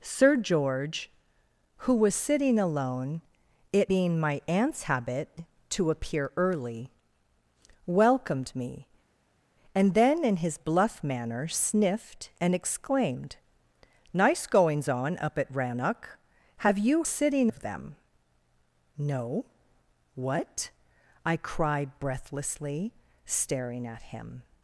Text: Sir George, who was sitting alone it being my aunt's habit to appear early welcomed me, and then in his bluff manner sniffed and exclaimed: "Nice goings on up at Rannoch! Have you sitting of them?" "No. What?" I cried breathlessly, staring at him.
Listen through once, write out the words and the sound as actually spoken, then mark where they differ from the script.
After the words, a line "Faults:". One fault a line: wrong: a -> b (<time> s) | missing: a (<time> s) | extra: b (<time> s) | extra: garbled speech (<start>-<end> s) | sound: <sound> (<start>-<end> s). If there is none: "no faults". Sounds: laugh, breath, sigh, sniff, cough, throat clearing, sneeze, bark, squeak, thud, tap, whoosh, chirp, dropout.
Sir George, who was sitting alone it being my aunt's habit to appear early welcomed me, and then in his bluff manner sniffed and exclaimed: "Nice goings on up at Rannoch! Have you sitting of them?" "No. What?" I cried breathlessly, staring at him.
Faults:
no faults